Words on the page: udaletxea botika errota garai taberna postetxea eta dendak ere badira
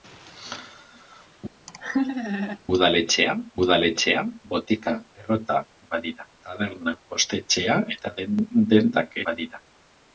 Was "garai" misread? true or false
true